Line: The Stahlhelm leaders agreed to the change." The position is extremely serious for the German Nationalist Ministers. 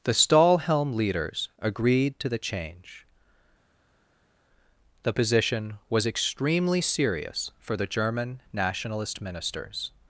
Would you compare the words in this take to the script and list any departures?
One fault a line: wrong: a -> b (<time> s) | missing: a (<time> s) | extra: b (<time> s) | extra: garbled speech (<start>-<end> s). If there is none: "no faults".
wrong: is -> was (5.9 s)